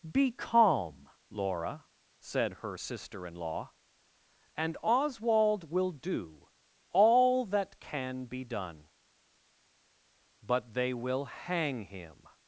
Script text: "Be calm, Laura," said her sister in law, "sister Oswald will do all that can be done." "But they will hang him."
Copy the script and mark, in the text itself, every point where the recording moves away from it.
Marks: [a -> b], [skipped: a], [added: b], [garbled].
"Be calm, Laura," said her sister in law, ["sister -> and] Oswald will do all that can be done." "But they will hang him."